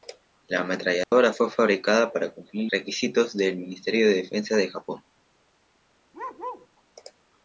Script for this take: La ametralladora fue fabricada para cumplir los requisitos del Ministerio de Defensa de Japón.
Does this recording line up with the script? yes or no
no